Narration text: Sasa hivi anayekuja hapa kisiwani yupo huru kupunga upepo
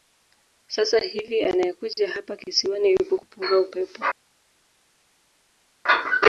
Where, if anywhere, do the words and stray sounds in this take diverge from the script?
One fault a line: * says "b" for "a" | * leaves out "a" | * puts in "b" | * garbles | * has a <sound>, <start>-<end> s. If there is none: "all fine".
* leaves out "huru"